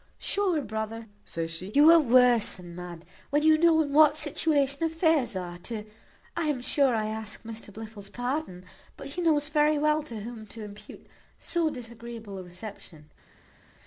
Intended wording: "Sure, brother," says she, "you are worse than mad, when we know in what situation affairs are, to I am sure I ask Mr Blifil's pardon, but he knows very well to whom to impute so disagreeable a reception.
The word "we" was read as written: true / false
false